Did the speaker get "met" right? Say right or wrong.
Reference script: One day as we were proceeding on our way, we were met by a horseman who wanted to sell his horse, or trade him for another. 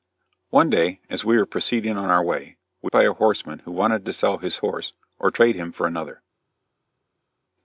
wrong